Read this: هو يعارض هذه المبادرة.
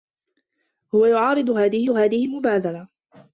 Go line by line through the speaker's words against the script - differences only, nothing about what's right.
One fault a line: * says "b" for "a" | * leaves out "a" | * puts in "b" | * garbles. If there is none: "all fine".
* puts in "هذه"